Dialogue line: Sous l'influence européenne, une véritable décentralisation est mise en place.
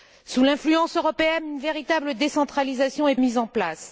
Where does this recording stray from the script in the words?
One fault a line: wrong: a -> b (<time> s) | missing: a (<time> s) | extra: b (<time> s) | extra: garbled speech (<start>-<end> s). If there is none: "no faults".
no faults